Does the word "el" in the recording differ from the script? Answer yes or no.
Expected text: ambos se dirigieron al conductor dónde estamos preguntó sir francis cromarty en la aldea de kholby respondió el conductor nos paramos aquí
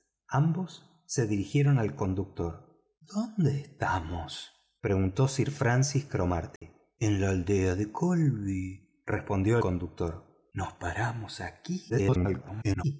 yes